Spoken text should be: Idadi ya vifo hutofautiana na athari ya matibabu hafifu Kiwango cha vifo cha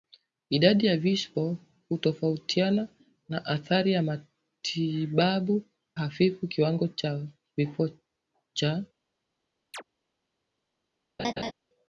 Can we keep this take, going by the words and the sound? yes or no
no